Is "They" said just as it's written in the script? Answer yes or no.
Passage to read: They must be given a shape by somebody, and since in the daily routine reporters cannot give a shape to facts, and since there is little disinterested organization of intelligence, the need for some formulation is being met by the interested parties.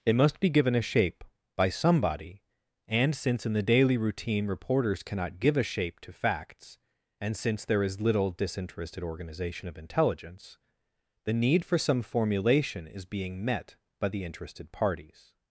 no